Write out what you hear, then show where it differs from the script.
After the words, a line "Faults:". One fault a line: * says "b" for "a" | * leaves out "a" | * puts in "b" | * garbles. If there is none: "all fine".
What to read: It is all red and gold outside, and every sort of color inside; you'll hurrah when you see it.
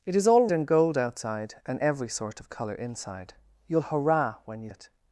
It is all and gold outside, and every sort of color inside; you'll hurrah when you it.
Faults:
* leaves out "red"
* leaves out "see"